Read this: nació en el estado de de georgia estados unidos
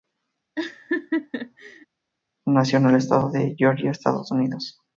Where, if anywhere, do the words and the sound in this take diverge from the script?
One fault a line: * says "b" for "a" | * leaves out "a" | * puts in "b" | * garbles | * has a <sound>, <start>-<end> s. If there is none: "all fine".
* has a laugh, 0.6-1.9 s
* leaves out "de"